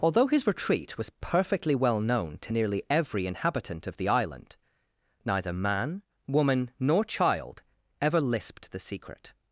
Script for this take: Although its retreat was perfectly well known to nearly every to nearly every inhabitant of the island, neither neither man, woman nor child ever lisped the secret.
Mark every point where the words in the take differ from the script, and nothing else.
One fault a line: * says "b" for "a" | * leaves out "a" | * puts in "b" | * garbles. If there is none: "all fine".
* says "his" for "its"
* leaves out "to nearly every"
* leaves out "neither"